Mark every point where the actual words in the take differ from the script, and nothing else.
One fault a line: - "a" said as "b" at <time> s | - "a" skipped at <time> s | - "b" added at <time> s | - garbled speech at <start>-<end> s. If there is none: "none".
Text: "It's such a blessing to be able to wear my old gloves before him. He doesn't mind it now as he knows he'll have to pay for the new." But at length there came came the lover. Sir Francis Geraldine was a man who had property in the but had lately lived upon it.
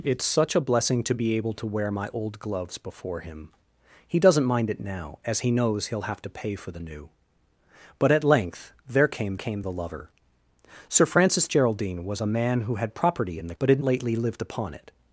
none